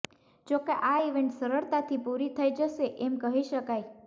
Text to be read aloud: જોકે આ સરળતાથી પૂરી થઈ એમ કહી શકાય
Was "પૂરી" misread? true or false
false